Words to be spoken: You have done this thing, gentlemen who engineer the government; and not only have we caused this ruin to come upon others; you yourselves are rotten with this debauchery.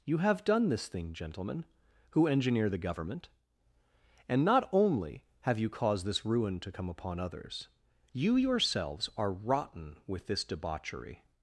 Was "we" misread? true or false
true